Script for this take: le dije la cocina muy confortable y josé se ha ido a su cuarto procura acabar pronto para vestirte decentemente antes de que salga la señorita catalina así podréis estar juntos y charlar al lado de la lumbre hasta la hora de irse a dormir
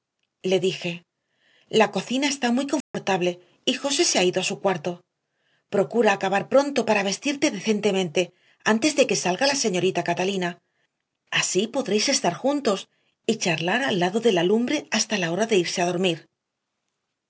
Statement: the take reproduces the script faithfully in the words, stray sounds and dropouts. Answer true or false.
false